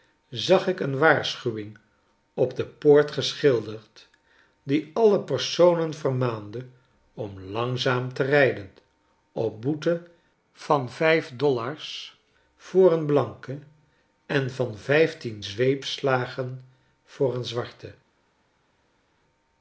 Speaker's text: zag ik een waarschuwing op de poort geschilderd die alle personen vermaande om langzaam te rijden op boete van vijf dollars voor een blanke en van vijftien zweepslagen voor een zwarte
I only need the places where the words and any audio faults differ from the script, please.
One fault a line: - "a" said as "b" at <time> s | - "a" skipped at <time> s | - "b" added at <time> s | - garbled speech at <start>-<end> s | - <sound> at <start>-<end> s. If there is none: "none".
none